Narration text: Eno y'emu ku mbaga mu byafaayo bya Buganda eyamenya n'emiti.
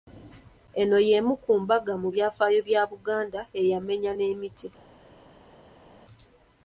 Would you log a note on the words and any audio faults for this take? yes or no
no